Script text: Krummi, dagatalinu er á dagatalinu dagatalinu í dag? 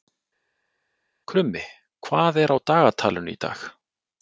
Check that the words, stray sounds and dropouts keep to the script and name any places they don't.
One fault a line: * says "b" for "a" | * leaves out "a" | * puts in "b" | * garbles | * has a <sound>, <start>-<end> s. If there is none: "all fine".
* says "hvað" for "dagatalinu"
* leaves out "dagatalinu"